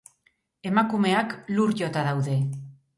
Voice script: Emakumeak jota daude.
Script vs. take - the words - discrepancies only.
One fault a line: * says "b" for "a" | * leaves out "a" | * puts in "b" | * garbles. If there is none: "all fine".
* puts in "lur"